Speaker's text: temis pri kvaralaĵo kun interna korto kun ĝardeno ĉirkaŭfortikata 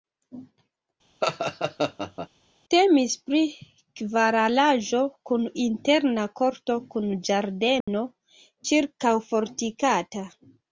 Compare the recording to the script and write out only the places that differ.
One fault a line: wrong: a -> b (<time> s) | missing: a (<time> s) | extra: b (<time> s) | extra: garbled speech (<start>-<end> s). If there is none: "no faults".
no faults